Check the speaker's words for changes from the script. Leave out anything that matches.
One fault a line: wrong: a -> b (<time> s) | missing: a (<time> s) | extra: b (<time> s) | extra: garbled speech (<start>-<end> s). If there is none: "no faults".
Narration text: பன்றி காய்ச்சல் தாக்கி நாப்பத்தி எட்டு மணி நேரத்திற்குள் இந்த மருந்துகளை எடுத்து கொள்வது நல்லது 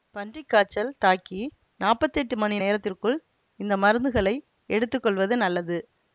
no faults